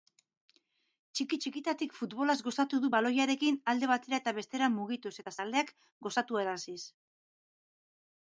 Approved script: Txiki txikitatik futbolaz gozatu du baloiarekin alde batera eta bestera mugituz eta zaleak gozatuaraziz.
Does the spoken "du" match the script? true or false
true